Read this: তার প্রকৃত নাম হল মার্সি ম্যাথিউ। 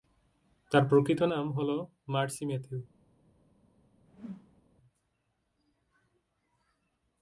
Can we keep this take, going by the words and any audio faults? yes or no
no